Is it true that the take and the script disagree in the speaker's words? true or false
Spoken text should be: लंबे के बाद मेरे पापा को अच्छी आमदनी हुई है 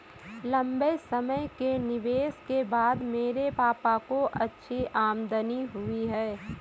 true